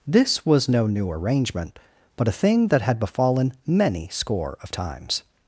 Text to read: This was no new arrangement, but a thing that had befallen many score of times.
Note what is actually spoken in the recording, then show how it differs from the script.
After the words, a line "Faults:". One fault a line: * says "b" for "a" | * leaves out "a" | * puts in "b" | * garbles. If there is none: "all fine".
This was no new arrangement, but a thing that had befallen many score of times.
Faults:
all fine